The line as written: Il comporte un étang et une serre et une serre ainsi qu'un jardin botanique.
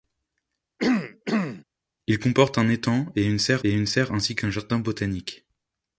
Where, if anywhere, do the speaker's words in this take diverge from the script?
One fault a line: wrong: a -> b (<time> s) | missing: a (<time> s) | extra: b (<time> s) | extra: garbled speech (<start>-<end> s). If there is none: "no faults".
no faults